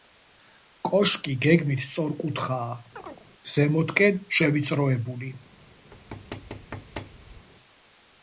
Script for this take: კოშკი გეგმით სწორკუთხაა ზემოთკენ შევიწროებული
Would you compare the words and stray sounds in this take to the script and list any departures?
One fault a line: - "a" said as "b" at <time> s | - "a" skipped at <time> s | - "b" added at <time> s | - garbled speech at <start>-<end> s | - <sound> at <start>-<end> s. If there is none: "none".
- chirp at 3.0-3.3 s
- thud at 5.9-7.5 s